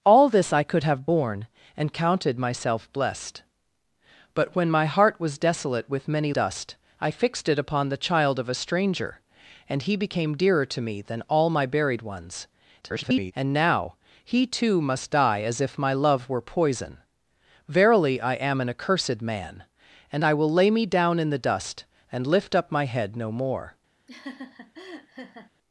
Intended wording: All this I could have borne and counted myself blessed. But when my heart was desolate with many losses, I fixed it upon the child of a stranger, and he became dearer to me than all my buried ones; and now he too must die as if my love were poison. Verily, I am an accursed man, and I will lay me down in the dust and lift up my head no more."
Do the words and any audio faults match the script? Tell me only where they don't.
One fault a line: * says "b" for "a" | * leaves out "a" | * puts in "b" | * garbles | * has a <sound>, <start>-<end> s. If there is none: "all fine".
* says "dust" for "losses"
* garbles
* has a laugh, 24.1-25.5 s